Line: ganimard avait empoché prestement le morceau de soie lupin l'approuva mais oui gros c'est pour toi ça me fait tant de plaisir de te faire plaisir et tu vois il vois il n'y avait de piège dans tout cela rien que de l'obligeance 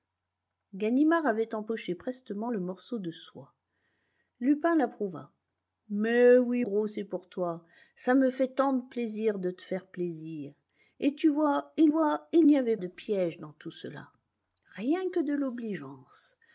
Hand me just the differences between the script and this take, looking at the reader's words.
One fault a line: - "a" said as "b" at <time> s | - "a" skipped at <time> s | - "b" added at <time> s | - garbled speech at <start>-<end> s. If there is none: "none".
none